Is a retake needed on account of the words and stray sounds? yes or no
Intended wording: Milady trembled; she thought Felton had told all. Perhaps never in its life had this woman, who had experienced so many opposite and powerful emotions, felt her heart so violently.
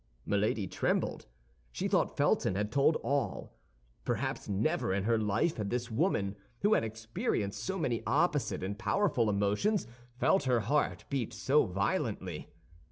yes